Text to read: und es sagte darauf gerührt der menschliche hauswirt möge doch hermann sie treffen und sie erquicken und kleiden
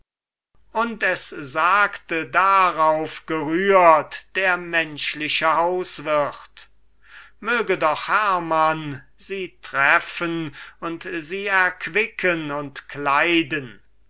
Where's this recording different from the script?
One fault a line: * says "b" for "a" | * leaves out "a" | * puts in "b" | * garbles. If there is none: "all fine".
all fine